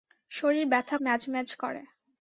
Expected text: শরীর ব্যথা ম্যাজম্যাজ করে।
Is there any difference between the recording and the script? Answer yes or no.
no